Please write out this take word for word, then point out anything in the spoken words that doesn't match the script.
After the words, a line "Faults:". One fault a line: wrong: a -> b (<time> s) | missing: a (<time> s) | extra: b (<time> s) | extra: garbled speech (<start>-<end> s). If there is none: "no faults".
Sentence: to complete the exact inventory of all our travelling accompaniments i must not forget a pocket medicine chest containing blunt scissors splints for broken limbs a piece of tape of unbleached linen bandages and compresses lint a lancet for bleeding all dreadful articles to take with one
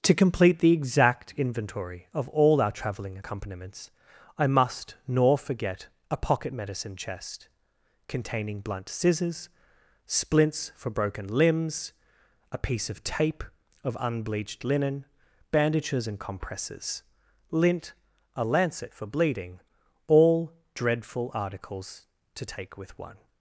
to complete the exact inventory of all our travelling accompaniments i must nor forget a pocket medicine chest containing blunt scissors splints for broken limbs a piece of tape of unbleached linen bandages and compresses lint a lancet for bleeding all dreadful articles to take with one
Faults:
wrong: not -> nor (5.1 s)